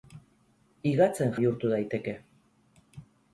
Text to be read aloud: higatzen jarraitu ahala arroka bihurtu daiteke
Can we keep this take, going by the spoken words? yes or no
no